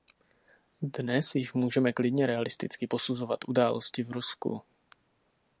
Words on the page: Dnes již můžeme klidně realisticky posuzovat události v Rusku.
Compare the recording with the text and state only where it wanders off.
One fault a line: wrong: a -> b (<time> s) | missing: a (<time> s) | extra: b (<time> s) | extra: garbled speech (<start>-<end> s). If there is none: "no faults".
no faults